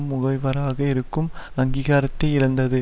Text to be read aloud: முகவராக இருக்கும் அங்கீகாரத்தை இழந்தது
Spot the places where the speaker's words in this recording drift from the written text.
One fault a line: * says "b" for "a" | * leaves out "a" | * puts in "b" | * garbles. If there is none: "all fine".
all fine